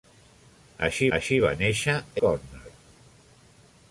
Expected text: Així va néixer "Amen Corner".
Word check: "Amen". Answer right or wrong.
wrong